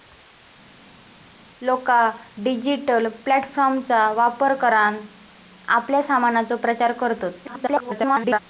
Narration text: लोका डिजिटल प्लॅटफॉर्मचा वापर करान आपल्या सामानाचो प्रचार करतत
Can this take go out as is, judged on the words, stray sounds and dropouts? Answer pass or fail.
fail